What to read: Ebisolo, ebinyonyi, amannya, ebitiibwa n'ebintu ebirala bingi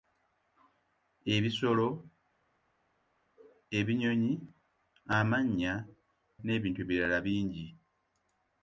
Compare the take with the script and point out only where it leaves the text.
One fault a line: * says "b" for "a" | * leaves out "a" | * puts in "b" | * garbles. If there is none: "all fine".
* leaves out "ebitiibwa"